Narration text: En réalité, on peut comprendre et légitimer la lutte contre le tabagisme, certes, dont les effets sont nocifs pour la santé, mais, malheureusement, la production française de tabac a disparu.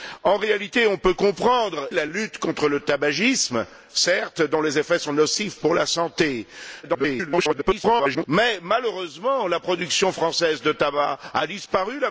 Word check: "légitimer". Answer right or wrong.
wrong